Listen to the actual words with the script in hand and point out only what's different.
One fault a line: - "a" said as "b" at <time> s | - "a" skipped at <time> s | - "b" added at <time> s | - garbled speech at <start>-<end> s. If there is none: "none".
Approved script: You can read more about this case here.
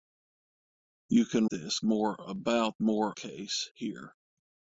- "read" said as "this" at 1.5 s
- "this" said as "more" at 2.8 s